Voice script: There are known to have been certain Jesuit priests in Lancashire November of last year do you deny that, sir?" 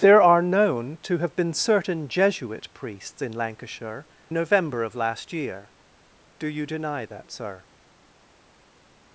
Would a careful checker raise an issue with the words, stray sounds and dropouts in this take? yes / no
no